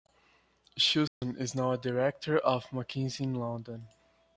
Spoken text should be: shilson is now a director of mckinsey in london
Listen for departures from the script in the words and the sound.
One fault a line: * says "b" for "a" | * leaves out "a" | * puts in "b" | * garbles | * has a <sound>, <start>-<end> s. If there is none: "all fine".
* has a dropout, 1.1-1.2 s